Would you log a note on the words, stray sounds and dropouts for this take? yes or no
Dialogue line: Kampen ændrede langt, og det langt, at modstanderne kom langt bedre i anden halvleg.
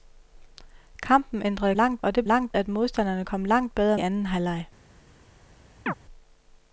yes